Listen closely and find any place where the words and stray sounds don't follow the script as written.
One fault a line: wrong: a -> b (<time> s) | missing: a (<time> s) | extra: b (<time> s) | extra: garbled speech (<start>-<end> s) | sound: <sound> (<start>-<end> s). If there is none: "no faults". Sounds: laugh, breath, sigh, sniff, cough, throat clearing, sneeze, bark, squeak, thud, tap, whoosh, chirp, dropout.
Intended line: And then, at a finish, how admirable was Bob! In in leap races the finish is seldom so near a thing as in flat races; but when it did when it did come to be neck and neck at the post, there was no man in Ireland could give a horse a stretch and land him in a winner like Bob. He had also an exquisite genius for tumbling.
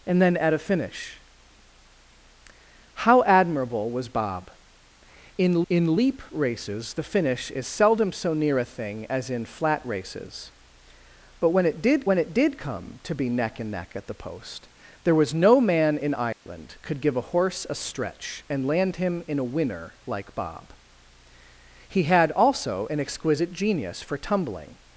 sound: dropout (16.3-16.5 s)